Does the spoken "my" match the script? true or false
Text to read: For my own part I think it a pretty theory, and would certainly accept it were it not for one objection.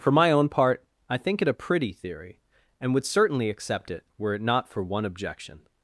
true